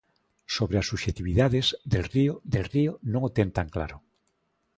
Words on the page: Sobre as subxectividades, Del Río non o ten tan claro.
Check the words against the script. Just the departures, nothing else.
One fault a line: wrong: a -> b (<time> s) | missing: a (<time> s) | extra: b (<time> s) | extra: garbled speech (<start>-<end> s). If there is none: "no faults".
extra: Del Río (2.5 s)